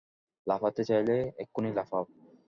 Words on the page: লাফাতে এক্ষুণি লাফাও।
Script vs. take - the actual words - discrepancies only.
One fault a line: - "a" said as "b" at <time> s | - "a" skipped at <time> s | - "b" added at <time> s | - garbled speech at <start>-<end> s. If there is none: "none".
- "চাইলে" added at 0.8 s